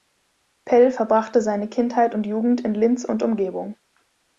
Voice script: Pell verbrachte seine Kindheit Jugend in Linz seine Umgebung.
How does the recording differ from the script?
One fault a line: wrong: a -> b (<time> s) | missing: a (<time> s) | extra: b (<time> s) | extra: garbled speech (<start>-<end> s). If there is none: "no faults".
extra: und (2.1 s)
wrong: seine -> und (3.0 s)